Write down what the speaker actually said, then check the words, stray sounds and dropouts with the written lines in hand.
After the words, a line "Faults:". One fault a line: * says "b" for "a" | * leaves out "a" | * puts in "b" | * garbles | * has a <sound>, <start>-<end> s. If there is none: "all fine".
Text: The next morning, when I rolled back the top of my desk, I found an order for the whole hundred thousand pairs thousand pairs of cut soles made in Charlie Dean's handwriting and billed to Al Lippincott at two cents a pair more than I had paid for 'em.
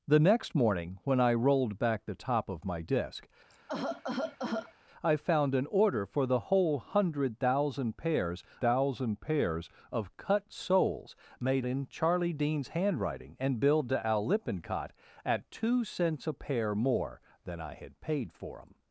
The next morning, when I rolled back the top of my desk, I found an order for the whole hundred thousand pairs thousand pairs of cut soles made in Charlie Dean's handwriting and billed to Al Lippincott at two cents a pair more than I had paid for 'em.
Faults:
* has a cough, 3.5-4.7 s